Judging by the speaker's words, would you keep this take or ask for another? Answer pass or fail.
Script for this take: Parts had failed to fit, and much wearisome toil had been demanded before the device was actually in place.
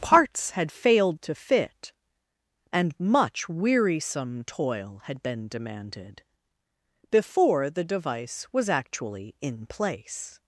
pass